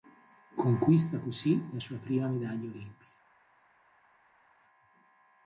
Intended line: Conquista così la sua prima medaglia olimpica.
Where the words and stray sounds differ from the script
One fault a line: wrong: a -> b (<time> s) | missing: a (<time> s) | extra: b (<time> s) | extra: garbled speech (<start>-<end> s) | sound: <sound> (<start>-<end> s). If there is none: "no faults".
no faults